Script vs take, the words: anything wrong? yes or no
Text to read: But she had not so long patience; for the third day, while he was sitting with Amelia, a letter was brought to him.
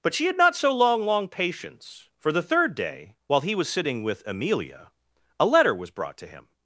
yes